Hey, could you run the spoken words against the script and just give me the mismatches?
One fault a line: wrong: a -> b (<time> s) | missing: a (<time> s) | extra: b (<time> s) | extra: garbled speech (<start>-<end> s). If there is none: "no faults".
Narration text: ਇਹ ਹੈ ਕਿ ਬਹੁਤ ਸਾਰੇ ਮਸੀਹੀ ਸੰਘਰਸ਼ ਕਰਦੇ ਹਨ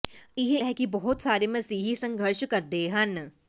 no faults